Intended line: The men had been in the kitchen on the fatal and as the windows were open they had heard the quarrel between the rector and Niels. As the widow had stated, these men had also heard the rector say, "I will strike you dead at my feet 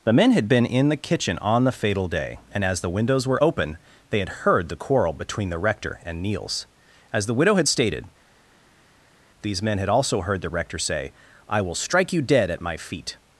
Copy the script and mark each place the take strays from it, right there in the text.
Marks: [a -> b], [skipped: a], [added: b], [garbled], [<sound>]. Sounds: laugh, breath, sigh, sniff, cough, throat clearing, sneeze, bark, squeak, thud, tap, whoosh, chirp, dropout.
The men had been in the kitchen on the fatal [added: day] and as the windows were open they had heard the quarrel between the rector and Niels. As the widow had stated, these men had also heard the rector say, "I will strike you dead at my feet